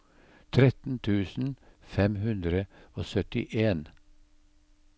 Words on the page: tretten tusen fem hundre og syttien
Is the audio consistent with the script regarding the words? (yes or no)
yes